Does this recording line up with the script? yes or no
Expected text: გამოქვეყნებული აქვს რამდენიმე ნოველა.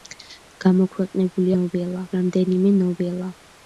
no